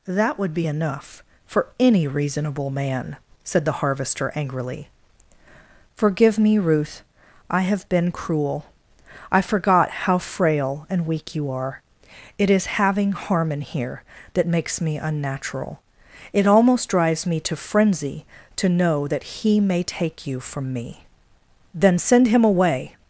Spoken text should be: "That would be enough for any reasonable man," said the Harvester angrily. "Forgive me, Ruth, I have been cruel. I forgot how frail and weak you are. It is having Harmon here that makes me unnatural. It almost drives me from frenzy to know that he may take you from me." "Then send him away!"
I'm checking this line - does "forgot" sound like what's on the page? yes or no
yes